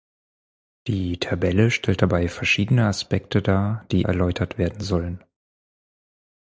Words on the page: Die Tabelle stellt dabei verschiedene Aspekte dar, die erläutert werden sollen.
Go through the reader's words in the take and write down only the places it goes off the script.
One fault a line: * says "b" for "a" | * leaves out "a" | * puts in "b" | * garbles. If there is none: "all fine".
all fine